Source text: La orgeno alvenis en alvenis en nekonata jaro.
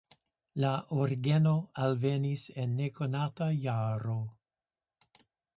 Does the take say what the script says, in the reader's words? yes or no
no